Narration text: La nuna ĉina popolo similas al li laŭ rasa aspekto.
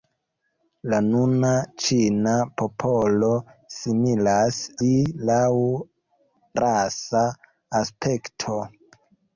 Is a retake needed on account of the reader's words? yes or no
yes